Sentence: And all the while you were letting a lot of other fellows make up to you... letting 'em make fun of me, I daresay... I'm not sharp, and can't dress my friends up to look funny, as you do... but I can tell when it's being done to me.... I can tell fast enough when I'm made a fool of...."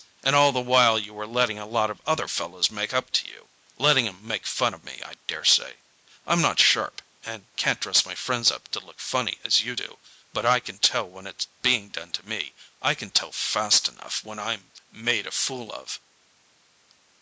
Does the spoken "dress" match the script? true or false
true